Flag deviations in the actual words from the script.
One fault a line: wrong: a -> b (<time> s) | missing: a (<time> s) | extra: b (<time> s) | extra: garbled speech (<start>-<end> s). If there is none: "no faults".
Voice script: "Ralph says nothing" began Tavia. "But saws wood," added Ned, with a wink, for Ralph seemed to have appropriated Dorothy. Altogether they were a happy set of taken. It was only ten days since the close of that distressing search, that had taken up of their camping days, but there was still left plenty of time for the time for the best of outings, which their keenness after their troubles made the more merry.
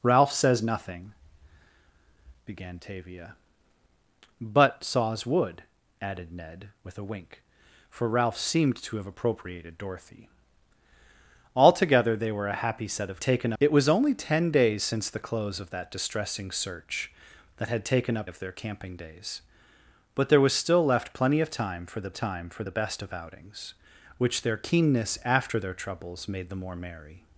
no faults